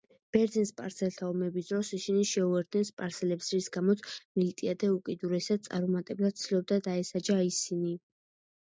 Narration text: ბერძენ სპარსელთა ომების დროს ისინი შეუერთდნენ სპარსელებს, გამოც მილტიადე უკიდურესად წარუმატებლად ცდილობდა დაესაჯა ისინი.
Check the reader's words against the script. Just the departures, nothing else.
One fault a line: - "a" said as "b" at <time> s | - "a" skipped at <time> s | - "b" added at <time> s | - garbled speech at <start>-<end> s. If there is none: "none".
- "რის" added at 3.6 s